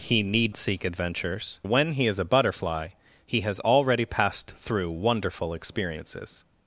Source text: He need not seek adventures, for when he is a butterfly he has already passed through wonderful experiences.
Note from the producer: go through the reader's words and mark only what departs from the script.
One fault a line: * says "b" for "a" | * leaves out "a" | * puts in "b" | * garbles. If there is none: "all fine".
* leaves out "not"
* leaves out "for"